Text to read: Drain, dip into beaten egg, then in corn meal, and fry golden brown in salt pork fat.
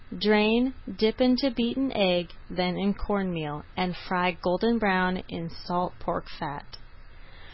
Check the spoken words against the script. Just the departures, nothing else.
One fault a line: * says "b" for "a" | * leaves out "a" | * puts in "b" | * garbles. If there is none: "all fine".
all fine